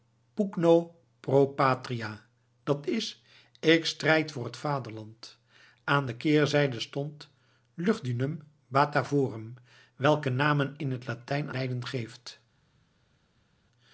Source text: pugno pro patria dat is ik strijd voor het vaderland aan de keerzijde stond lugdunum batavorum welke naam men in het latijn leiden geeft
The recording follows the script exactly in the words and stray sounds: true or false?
true